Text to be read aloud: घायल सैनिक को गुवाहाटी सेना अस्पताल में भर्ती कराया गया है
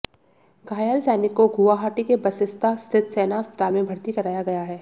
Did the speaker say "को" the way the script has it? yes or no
yes